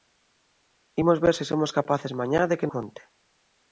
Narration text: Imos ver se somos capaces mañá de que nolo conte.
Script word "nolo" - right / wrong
wrong